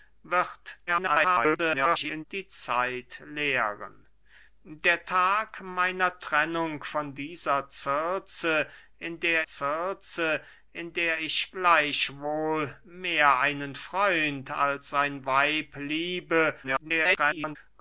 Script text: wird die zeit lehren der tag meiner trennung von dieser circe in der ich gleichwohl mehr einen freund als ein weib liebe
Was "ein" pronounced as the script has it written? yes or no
yes